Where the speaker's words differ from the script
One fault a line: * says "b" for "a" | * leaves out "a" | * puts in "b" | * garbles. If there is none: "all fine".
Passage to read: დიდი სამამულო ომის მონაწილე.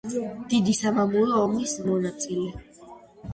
all fine